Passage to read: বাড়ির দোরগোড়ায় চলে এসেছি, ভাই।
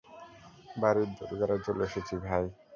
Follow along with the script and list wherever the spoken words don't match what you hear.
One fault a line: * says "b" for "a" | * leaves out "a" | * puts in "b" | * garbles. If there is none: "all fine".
all fine